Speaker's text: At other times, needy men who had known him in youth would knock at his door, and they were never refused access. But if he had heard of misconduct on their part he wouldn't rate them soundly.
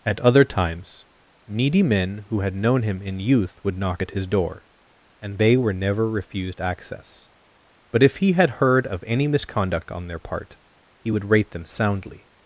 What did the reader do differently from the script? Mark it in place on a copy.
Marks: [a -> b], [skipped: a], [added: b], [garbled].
At other times, needy men who had known him in youth would knock at his door, and they were never refused access. But if he had heard of [added: any] misconduct on their part he [wouldn't -> would] rate them soundly.